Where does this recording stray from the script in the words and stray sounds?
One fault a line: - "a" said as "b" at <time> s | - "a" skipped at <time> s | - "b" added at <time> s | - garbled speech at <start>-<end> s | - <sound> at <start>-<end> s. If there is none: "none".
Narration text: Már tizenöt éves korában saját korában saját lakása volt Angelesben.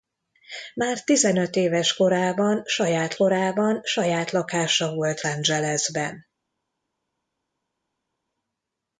none